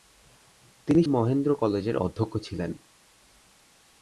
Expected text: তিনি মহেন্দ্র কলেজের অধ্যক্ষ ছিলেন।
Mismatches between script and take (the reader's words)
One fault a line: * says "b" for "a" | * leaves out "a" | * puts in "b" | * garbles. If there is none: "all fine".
all fine